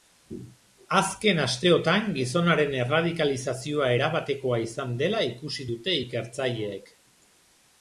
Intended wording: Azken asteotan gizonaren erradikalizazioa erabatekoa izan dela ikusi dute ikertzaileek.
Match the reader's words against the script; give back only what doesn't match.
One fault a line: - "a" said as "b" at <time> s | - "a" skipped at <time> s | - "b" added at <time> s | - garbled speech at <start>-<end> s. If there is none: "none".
none